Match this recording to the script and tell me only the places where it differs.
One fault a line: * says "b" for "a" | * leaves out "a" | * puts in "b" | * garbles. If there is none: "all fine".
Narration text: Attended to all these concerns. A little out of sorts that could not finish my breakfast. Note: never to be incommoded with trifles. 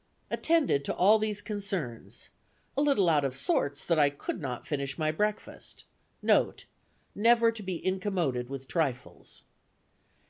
* puts in "I"